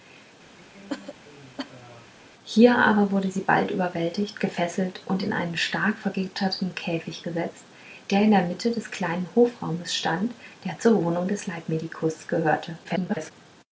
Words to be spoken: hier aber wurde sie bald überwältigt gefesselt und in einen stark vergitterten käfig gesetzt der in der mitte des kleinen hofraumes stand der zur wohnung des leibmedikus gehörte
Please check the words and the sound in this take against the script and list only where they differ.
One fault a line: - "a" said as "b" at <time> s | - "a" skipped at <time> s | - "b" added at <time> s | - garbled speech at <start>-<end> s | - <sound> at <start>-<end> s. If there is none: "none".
- cough at 0.6-2.1 s
- garbled speech at 12.8-13.3 s